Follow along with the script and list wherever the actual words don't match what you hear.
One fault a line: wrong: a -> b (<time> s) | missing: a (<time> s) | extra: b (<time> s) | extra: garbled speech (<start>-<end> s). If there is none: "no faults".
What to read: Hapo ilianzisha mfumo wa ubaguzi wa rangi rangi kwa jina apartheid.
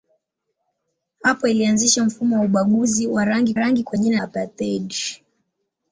no faults